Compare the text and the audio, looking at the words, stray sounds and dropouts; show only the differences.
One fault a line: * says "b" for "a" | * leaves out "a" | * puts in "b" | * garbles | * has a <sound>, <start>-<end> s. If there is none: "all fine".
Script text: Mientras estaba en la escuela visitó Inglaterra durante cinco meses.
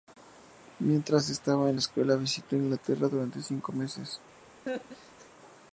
* has a laugh, 4.7-5.3 s